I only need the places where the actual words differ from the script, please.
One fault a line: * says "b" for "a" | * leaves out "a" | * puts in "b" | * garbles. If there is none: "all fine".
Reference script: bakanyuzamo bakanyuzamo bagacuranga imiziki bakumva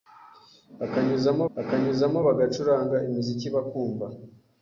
all fine